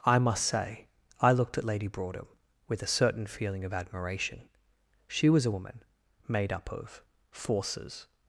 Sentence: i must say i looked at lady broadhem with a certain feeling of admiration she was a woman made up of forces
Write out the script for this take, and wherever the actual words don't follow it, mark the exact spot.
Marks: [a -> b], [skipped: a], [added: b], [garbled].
i must say i looked at lady broadhem with a certain feeling of admiration she was a woman made up of forces